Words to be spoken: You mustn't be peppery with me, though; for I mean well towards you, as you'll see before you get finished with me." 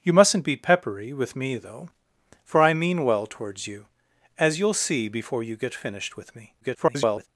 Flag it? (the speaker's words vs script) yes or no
yes